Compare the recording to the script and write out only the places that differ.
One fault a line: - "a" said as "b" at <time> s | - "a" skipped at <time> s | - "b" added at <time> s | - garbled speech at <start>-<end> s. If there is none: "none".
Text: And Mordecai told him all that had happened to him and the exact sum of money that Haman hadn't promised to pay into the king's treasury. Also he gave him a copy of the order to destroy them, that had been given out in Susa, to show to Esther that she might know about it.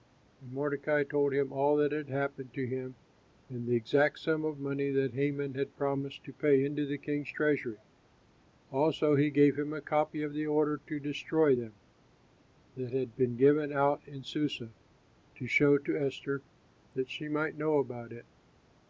- "hadn't" said as "had" at 5.5 s